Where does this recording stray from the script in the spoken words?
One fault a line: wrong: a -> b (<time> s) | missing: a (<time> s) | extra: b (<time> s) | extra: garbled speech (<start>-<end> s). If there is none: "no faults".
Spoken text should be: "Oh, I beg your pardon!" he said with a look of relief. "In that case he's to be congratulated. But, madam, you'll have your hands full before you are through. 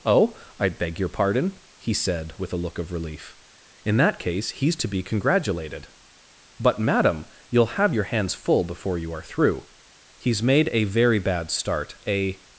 extra: He's made a very bad start a (10.2 s)